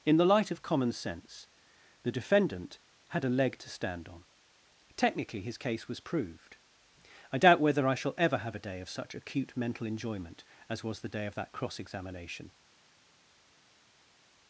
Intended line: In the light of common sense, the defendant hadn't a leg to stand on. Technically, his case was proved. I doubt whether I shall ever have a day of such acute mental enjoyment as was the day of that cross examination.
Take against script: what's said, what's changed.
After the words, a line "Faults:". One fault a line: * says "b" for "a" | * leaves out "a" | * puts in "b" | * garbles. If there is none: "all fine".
In the light of common sense, the defendant had a leg to stand on. Technically, his case was proved. I doubt whether I shall ever have a day of such acute mental enjoyment as was the day of that cross examination.
Faults:
* says "had" for "hadn't"